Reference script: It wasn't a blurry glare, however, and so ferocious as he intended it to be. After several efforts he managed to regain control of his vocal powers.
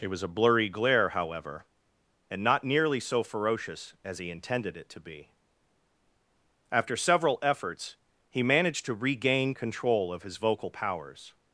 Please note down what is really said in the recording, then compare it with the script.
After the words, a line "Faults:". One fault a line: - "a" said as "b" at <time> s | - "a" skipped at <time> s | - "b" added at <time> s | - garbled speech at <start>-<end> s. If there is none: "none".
It was a blurry glare, however, and not nearly so ferocious as he intended it to be. After several efforts he managed to regain control of his vocal powers.
Faults:
- "wasn't" said as "was" at 0.1 s
- "not nearly" added at 2.4 s